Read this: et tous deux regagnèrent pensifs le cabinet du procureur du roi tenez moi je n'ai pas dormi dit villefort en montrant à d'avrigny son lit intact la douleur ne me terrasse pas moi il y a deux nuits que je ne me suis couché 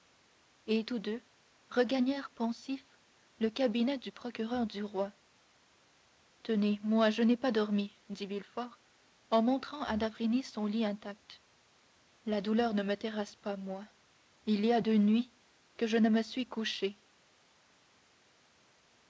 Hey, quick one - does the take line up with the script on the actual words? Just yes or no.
yes